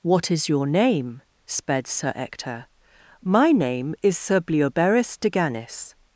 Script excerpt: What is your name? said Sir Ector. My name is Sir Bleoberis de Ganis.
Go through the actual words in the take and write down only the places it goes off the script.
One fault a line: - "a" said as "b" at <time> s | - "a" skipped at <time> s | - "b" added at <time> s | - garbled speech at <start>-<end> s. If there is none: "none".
- "said" said as "sped" at 1.4 s